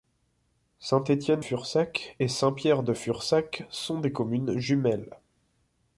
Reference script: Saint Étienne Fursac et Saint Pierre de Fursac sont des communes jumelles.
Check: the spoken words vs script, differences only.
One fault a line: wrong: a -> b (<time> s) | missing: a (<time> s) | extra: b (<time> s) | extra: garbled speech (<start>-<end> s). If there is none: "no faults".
no faults